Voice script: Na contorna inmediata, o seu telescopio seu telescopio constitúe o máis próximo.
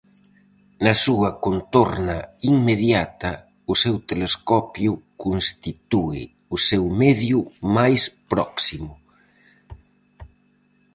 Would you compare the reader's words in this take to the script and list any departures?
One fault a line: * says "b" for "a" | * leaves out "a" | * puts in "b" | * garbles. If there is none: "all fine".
* puts in "súa"
* says "constitúe o seu medio" for "seu telescopio constitúe o"